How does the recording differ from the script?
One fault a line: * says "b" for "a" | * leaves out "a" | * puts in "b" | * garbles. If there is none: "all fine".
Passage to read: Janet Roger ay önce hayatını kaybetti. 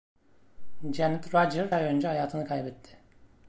all fine